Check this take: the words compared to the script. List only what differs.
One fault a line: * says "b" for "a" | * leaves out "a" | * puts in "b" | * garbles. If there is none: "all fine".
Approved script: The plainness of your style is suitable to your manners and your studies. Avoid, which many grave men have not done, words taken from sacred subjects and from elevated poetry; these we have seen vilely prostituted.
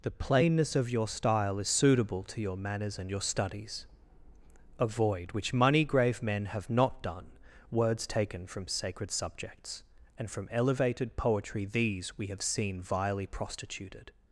* says "money" for "many"